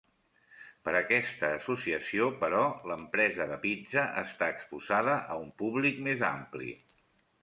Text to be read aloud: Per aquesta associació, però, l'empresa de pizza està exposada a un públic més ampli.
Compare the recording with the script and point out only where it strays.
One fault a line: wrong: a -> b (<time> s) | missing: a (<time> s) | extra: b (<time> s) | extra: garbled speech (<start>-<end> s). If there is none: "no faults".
no faults